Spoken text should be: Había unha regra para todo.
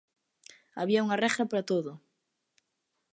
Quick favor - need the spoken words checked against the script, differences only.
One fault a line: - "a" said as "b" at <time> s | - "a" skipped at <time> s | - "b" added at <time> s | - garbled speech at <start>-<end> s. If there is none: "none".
none